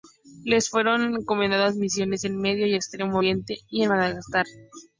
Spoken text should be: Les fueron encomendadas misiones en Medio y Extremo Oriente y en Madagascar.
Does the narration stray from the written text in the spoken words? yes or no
no